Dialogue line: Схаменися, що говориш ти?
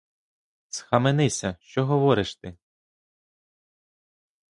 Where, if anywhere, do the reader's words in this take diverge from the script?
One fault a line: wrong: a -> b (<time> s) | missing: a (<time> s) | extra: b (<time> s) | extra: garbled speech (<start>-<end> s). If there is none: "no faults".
no faults